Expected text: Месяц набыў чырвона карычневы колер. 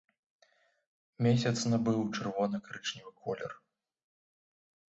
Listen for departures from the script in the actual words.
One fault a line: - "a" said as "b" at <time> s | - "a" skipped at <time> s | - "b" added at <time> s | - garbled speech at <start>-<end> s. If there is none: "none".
none